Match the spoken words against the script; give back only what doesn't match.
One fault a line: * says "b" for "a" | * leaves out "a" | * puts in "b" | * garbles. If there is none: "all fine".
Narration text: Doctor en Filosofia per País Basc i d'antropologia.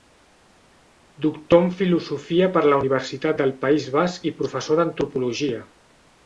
* puts in "la Universitat del"
* puts in "professor"